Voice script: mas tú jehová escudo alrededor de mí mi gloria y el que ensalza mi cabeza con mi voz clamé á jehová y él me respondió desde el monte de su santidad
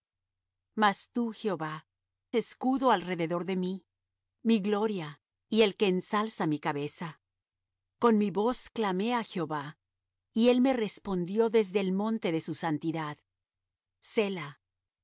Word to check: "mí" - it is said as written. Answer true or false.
true